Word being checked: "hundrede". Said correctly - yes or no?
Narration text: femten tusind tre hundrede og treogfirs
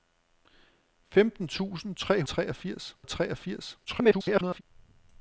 no